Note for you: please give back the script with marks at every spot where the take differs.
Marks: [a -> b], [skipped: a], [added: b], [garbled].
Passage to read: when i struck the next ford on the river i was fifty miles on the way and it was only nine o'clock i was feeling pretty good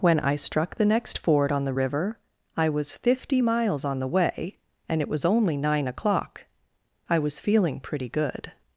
when i struck the next ford on the river i was fifty miles on the way and it was only nine o'clock i was feeling pretty good